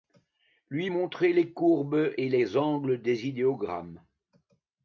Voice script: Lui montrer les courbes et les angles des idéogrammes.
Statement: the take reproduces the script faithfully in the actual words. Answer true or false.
true